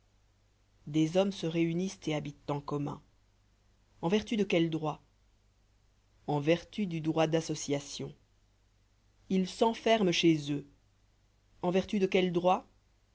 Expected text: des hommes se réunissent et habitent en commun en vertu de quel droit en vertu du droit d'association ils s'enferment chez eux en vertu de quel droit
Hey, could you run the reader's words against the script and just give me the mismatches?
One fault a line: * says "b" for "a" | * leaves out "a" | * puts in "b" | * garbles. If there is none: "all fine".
all fine